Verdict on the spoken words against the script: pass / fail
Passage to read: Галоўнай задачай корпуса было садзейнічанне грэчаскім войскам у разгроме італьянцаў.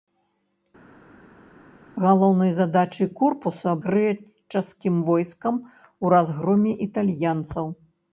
fail